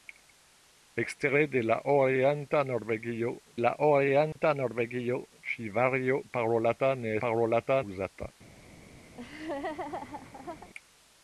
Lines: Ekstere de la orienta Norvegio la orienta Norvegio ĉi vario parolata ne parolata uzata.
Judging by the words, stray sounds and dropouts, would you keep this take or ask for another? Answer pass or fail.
fail